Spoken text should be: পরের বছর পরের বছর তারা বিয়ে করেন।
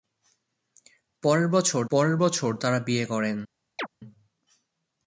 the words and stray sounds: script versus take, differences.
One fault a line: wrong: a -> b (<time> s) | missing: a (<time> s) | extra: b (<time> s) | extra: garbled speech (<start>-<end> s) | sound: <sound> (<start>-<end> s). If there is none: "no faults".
sound: chirp (3.8-3.9 s)